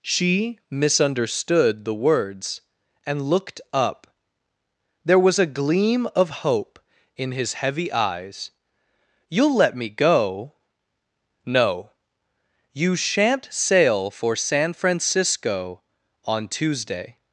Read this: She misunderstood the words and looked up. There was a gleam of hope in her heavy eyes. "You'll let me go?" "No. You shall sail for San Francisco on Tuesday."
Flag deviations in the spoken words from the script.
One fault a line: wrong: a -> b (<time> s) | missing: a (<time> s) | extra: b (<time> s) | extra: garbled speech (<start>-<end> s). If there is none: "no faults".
wrong: her -> his (7.3 s)
wrong: shall -> shan't (13.0 s)